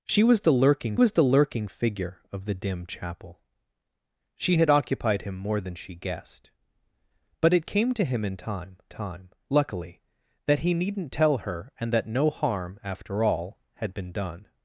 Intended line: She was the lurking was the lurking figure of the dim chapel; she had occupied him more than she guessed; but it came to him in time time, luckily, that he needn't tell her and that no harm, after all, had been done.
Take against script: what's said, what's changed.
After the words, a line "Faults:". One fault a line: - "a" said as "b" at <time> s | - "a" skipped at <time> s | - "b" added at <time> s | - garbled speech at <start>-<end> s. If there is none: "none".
She was the lurking was the lurking figure of the dim chapel; she had occupied him more than she guessed; but it came to him in time time, luckily, that he needn't tell her and that no harm, after all, had been done.
Faults:
none